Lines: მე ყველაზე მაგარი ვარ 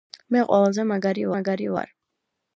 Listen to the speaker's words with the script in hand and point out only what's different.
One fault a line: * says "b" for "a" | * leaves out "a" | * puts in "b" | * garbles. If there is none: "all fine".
* puts in "მაგარი"